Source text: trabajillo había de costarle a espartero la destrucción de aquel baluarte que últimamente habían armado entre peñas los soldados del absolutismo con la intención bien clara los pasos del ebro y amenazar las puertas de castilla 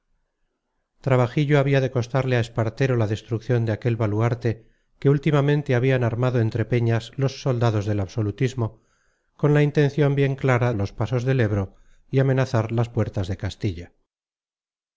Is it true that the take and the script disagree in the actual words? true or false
false